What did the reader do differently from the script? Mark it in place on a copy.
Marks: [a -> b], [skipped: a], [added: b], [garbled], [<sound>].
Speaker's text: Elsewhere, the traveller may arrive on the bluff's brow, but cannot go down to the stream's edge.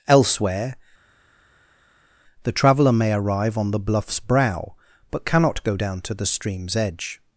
Elsewhere, the traveller may arrive on the bluff's brow, but cannot go down to the stream's edge.